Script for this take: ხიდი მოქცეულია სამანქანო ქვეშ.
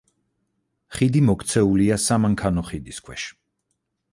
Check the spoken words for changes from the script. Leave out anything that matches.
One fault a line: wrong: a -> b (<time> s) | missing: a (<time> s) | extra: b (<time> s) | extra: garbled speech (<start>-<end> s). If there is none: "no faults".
extra: ხიდის (2.7 s)